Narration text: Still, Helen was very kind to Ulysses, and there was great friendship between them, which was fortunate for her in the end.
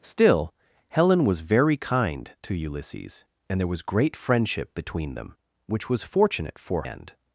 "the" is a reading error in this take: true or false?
true